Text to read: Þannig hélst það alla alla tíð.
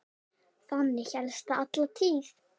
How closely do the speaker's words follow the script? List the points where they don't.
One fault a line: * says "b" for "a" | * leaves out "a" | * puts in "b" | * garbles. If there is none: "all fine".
* leaves out "alla"